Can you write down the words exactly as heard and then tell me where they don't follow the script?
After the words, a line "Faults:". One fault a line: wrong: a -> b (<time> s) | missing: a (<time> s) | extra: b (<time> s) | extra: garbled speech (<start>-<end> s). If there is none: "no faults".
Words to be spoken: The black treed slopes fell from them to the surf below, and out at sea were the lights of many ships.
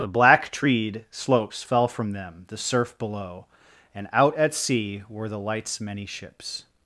The black treed slopes fell from them the surf below, and out at sea were the lights many ships.
Faults:
missing: to (2.5 s)
missing: of (5.8 s)